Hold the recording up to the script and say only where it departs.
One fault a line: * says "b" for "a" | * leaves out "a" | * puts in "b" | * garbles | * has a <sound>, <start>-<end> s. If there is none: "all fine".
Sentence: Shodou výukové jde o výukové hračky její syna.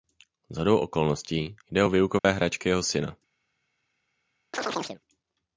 * says "okolností" for "výukové"
* has a dropout, 2.2-2.2 s
* says "jeho" for "její"
* has a chirp, 4.5-5.0 s